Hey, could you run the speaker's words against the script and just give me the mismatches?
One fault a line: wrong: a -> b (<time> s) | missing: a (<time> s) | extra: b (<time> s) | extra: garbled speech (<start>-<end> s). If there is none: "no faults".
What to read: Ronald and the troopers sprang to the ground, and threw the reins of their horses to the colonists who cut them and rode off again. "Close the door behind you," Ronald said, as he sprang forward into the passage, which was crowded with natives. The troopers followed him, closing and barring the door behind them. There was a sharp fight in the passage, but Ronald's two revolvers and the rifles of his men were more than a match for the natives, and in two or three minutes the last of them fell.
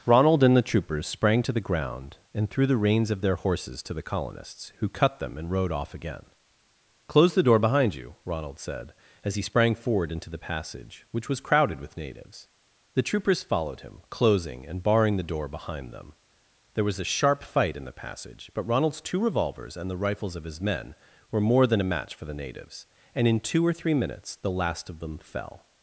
no faults